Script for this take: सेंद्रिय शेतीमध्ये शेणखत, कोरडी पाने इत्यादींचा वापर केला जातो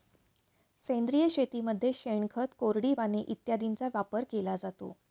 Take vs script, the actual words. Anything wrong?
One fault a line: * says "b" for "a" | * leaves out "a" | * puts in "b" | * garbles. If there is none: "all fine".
all fine